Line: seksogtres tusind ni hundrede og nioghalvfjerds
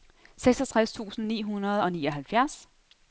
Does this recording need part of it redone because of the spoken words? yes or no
no